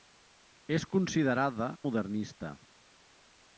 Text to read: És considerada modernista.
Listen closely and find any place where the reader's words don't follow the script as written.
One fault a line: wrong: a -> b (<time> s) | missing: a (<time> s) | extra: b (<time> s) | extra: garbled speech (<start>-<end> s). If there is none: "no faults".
no faults